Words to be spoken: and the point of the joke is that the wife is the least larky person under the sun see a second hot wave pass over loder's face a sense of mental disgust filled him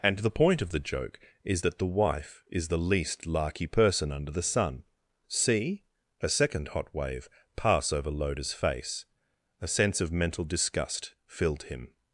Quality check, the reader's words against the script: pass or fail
pass